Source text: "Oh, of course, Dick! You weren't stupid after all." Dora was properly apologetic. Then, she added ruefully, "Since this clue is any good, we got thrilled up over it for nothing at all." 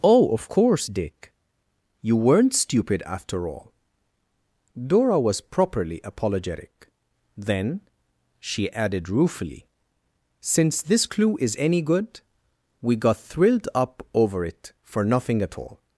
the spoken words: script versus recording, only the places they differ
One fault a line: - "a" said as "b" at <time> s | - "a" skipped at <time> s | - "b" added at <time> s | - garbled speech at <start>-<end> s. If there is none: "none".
none